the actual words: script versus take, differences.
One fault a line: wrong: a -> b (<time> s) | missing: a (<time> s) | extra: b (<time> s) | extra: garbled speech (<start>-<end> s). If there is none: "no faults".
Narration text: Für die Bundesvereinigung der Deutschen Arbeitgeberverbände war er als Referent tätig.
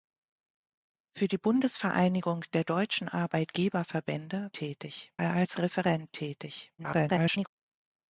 wrong: war -> tätig (4.5 s)
extra: garbled speech (6.8-7.5 s)